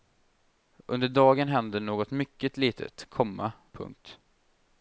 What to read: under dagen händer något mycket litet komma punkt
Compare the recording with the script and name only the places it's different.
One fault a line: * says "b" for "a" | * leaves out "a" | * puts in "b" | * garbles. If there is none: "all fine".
all fine